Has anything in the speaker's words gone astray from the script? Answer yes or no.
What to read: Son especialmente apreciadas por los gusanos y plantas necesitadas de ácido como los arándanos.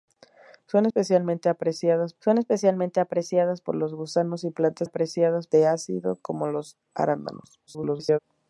yes